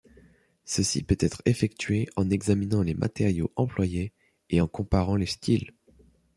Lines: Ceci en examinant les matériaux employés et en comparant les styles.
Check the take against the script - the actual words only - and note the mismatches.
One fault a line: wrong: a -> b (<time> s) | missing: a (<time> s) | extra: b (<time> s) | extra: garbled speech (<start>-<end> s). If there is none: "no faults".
extra: peut être effectué (1.0 s)